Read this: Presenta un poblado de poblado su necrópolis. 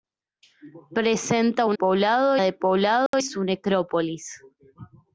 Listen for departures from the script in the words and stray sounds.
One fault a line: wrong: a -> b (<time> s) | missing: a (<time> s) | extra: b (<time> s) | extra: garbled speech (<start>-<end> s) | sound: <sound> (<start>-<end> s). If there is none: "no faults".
sound: dropout (3.1-3.1 s)